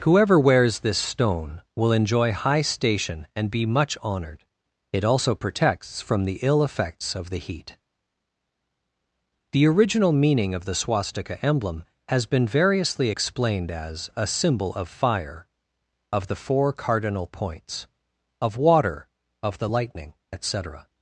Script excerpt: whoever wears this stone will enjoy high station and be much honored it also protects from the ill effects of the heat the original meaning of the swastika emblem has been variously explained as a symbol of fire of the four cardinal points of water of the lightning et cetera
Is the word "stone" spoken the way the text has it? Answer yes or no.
yes